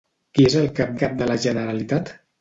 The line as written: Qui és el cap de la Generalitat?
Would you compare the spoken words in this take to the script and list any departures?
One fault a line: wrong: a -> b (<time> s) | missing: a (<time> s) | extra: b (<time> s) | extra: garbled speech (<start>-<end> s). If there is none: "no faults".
extra: cap (1.0 s)